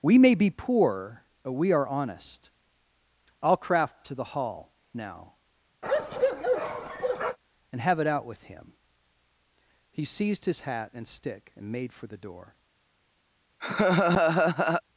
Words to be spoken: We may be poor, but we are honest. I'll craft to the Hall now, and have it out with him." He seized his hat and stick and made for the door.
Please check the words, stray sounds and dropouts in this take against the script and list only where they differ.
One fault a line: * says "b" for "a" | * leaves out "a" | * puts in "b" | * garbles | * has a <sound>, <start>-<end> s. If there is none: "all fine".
* has a bark, 5.8-7.4 s
* has a laugh, 13.6-14.8 s